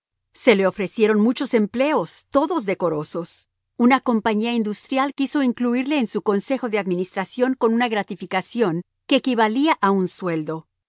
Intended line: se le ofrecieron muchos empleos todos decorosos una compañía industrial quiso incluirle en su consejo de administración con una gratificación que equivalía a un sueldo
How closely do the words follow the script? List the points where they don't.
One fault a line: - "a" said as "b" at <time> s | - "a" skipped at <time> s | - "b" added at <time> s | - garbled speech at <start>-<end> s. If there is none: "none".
none